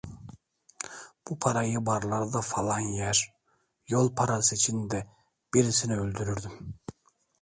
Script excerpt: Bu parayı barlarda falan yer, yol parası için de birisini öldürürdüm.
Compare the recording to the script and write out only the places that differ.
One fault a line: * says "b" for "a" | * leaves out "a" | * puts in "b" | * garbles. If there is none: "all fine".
all fine